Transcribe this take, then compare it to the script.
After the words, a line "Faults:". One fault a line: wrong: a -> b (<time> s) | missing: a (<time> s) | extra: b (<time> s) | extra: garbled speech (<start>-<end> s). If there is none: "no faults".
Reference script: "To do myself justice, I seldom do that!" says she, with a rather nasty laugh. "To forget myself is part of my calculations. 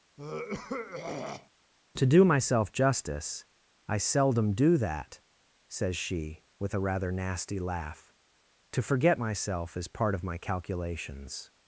"To do myself justice, I seldom do that!" says she, with a rather nasty laugh. "To forget myself is part of my calculations.
Faults:
no faults